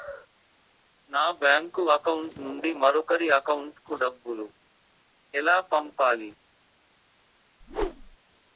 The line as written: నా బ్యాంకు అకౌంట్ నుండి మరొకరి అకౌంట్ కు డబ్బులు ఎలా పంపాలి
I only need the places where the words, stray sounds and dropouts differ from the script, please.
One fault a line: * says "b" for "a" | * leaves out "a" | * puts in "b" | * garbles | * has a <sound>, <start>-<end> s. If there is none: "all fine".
* has a whoosh, 7.6-8.2 s